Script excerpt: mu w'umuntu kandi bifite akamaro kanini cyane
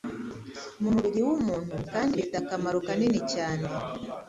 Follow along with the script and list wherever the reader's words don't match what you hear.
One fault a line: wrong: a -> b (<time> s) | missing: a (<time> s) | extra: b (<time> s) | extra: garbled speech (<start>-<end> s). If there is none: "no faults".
extra: mubiri (0.9 s)